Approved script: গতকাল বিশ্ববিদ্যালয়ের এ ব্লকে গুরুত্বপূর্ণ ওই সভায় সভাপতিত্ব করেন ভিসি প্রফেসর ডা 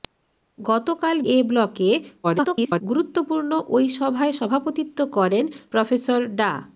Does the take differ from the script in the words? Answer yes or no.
yes